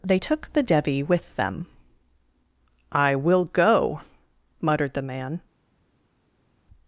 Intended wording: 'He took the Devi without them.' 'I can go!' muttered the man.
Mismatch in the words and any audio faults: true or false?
true